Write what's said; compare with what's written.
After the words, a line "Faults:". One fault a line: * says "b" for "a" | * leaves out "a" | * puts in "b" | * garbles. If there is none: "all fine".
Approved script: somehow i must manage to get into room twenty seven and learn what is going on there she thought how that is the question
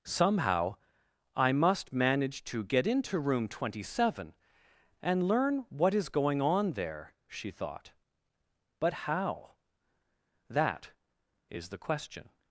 somehow i must manage to get into room twenty seven and learn what is going on there she thought but how that is the question
Faults:
* puts in "but"